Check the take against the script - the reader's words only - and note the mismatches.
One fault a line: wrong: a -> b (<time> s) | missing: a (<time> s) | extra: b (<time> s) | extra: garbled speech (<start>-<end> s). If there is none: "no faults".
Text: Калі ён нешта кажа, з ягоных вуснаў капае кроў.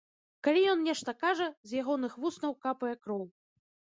no faults